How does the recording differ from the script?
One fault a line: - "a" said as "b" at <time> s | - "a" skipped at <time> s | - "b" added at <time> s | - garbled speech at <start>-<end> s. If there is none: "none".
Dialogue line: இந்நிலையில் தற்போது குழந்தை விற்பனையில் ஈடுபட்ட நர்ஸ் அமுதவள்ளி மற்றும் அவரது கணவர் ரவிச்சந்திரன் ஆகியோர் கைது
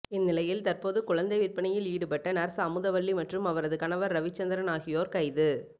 none